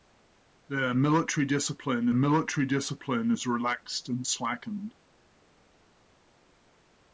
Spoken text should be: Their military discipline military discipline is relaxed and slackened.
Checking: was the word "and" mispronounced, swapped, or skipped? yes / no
no